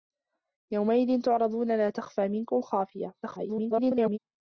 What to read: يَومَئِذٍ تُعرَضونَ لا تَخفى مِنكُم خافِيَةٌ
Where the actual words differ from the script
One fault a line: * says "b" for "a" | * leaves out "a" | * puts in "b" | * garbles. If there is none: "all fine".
* garbles